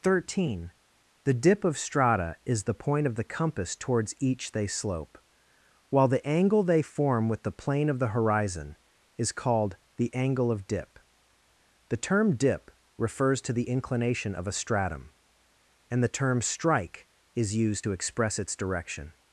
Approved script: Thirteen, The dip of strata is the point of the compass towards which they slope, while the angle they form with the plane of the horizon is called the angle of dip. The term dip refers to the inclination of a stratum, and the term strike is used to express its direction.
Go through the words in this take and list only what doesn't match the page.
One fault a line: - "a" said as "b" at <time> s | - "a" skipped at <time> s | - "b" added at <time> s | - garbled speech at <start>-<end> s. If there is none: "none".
- "which" said as "each" at 4.2 s